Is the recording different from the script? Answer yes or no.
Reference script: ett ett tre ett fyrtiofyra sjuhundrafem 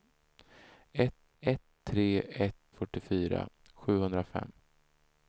no